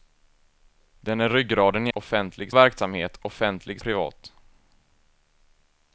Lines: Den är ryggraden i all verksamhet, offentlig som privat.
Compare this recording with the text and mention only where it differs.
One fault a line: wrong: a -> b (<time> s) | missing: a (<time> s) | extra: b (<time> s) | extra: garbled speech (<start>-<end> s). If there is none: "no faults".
wrong: all -> offentlig (1.9 s)
missing: som (3.8 s)